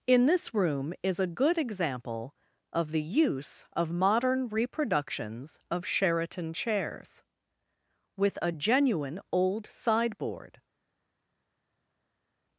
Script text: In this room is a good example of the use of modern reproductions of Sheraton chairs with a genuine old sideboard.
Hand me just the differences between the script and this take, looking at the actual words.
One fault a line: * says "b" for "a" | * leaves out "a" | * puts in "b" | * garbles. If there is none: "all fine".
all fine